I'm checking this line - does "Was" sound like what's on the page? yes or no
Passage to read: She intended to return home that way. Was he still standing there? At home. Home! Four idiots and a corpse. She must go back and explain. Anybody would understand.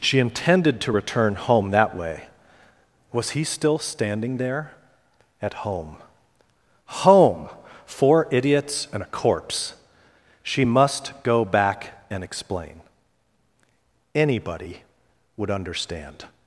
yes